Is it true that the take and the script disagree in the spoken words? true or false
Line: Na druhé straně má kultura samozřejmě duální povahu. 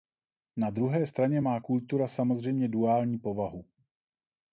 false